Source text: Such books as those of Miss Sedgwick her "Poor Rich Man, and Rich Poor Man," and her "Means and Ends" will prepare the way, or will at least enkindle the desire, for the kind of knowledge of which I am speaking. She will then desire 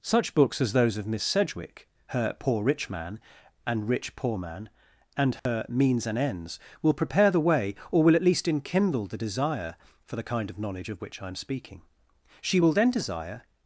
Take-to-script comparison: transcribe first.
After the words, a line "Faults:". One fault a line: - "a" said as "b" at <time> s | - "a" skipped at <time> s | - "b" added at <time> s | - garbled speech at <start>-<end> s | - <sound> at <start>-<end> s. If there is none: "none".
Such books as those of Miss Sedgwick her "Poor Rich Man, and Rich Poor Man," and her "Means and Ends" will prepare the way, or will at least enkindle the desire, for the kind of knowledge of which I am speaking. She will then desire
Faults:
- dropout at 5.4-5.5 s